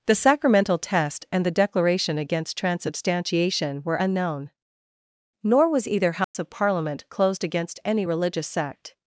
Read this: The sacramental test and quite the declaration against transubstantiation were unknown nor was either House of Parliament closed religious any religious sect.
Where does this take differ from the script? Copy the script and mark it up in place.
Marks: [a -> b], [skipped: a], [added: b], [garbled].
The sacramental test and [skipped: quite] the declaration against transubstantiation were unknown nor was either House of Parliament closed [religious -> against] any religious sect.